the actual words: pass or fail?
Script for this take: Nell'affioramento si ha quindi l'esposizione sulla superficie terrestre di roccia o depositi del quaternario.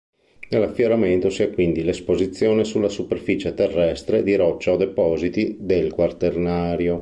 pass